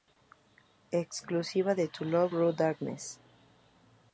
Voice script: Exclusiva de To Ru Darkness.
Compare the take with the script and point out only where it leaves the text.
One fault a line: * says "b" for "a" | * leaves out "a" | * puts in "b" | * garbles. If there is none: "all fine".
* puts in "Love"